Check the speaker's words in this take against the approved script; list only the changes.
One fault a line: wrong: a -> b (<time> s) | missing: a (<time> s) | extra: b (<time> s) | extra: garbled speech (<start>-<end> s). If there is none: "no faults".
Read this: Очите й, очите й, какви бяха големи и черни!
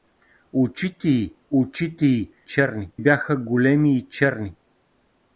wrong: какви -> черни (2.4 s)